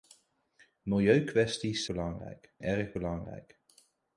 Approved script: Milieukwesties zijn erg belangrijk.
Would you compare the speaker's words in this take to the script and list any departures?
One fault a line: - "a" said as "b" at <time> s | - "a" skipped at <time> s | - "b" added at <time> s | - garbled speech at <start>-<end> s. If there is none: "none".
- "zijn" said as "belangrijk" at 1.8 s